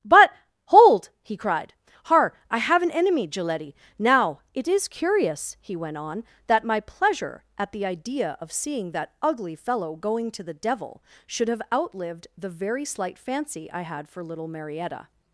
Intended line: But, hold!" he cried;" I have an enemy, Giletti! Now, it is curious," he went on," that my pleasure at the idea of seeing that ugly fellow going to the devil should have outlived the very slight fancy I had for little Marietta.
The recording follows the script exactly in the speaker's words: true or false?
false